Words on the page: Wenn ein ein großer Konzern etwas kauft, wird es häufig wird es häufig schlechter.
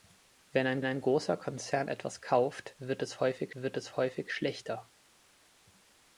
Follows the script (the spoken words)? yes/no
yes